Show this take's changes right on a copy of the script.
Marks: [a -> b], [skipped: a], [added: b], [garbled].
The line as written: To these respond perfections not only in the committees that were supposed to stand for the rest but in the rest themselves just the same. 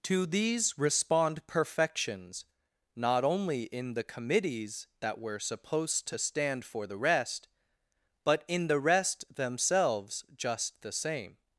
To these respond perfections not only in the committees that were supposed to stand for the rest but in the rest themselves just the same.